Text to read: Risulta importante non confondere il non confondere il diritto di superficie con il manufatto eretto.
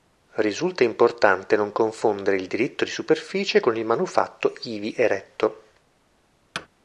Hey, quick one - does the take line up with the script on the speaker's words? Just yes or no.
no